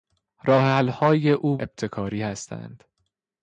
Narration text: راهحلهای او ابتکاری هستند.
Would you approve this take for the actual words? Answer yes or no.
yes